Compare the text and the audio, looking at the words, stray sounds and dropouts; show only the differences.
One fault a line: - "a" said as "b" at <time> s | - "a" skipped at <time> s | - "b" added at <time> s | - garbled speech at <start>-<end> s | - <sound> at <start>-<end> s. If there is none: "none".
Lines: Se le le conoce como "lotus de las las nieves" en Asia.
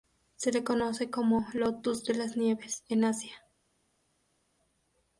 - "le" skipped at 0.6 s
- "las" skipped at 2.4 s